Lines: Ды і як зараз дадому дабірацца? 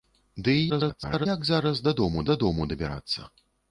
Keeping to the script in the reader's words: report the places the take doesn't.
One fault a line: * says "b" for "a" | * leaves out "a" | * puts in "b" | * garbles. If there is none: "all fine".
* garbles
* puts in "дадому"